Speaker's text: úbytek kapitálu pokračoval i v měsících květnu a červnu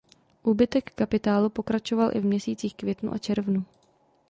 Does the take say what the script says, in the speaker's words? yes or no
yes